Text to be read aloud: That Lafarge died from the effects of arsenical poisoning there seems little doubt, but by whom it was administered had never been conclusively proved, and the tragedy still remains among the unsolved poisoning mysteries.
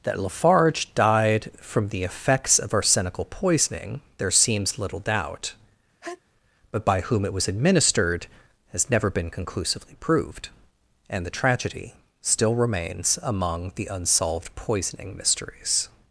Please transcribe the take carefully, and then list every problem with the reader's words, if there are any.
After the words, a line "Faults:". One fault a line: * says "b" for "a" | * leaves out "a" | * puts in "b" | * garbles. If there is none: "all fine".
That Lafarge died from the effects of arsenical poisoning there seems little doubt, but by whom it was administered has never been conclusively proved, and the tragedy still remains among the unsolved poisoning mysteries.
Faults:
* says "has" for "had"